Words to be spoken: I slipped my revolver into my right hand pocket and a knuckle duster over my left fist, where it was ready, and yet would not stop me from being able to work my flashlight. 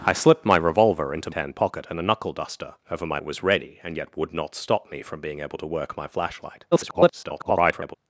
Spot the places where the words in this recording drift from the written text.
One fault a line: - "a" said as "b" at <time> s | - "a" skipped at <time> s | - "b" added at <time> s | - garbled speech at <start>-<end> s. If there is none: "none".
- "my right" skipped at 1.3 s
- "left fist where" skipped at 3.2 s
- garbled speech at 6.7-7.9 s